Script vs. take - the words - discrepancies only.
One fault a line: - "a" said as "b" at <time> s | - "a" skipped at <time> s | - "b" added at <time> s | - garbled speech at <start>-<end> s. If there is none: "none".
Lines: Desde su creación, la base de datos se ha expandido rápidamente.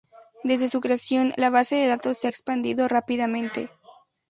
none